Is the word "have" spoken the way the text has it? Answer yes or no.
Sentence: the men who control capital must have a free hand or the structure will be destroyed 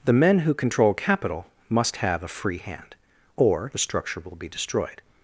yes